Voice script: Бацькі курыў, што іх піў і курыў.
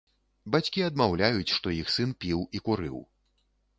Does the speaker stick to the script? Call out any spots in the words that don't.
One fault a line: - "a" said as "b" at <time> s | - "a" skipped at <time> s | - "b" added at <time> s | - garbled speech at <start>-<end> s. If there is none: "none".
- "курыў" said as "адмаўляюць" at 0.8 s
- "сын" added at 2.0 s